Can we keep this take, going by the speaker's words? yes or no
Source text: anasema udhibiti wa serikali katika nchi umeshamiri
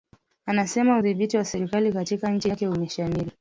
no